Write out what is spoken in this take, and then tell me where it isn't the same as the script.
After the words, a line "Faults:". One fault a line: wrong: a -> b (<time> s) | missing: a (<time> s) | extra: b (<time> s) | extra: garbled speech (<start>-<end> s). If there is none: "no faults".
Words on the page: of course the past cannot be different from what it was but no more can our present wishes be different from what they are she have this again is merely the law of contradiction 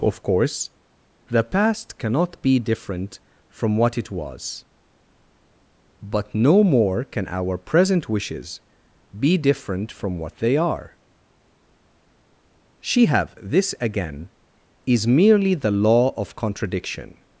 of course the past cannot be different from what it was but no more can our present wishes be different from what they are she have this again is merely the law of contradiction
Faults:
no faults